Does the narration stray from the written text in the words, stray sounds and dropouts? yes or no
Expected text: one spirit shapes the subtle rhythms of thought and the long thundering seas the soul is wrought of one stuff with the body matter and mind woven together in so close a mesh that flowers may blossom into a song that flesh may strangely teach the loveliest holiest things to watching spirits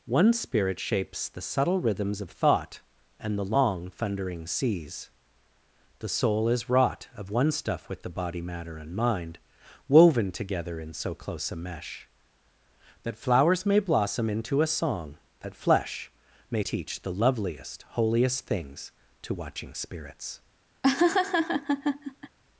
yes